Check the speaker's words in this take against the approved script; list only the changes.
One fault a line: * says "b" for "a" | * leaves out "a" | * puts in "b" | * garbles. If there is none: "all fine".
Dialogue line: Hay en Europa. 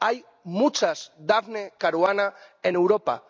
* puts in "muchas Daphne Caruana"